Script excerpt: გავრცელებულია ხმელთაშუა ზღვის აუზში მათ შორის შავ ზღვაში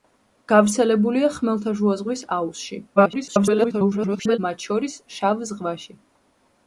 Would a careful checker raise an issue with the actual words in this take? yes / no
yes